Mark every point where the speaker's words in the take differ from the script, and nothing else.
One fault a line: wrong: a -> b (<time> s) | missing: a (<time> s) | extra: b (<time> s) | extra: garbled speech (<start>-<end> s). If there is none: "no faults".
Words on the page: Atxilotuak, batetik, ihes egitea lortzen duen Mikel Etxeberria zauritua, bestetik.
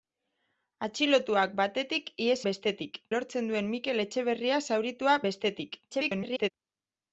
wrong: egitea -> bestetik (2.5 s)
extra: garbled speech (5.9-6.5 s)